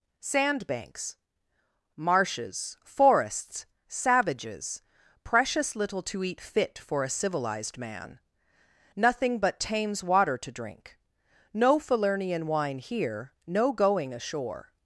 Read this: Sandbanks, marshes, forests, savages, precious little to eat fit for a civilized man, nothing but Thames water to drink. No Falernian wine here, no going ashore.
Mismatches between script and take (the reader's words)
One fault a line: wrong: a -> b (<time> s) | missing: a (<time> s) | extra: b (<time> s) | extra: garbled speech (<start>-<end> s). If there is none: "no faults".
no faults